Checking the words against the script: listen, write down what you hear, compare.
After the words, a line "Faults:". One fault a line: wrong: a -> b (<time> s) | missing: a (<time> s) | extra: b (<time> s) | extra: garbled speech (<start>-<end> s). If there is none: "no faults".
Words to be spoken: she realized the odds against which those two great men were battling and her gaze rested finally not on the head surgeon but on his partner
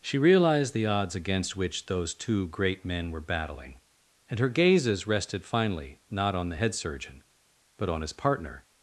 she realized the odds against which those two great men were battling and her gazes rested finally not on the head surgeon but on his partner
Faults:
wrong: gaze -> gazes (4.5 s)